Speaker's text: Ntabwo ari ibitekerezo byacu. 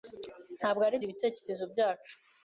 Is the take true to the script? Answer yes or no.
yes